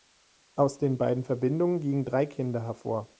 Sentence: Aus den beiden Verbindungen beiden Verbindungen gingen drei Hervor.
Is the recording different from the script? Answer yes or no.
yes